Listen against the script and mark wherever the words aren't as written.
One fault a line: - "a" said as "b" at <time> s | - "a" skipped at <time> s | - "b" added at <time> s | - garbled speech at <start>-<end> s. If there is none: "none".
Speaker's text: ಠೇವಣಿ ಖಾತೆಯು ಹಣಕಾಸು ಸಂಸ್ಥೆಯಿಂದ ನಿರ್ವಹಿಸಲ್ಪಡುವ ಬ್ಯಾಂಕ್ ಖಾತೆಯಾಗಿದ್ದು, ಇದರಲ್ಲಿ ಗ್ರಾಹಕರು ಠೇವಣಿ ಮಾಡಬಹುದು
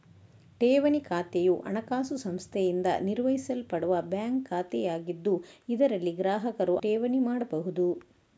none